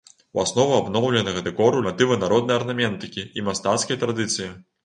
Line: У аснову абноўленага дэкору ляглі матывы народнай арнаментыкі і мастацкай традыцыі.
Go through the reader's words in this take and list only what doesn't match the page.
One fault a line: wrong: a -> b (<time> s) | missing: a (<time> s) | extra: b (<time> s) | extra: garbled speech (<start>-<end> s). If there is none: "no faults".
missing: ляглі (1.8 s)